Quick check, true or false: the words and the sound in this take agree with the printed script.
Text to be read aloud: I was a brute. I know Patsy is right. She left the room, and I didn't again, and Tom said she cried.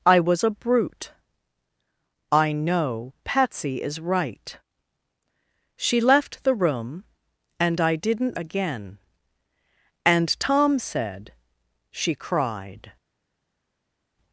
true